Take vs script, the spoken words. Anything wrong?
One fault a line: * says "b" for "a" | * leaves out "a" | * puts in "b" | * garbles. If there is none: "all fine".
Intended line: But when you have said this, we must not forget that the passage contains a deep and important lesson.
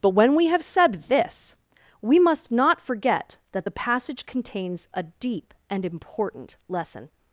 * says "we" for "you"